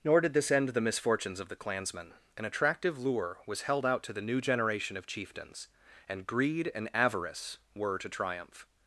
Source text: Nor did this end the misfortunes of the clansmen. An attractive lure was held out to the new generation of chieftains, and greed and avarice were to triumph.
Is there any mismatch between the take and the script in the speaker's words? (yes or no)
no